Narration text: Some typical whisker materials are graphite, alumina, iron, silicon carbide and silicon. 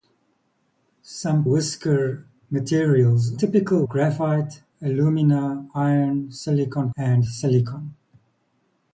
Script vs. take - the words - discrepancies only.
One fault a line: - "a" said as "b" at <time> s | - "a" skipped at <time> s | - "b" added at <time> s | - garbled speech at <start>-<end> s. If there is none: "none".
- "typical" skipped at 1.4 s
- "are" said as "typical" at 3.4 s
- "carbide" skipped at 6.9 s